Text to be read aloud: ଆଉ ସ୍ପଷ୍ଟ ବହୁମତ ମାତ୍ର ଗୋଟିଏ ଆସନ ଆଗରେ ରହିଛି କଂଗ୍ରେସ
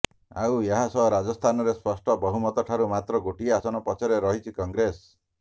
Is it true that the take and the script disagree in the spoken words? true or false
true